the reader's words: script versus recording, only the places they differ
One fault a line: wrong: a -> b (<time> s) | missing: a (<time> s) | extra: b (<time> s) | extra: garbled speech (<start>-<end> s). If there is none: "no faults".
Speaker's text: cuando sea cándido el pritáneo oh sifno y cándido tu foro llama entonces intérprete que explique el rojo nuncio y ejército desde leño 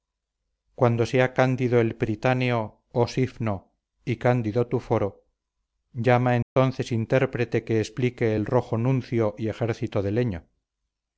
wrong: desde -> de (10.0 s)